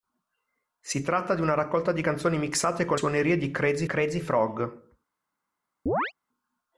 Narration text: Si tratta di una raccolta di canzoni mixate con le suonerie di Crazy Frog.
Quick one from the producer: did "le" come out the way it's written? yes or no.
no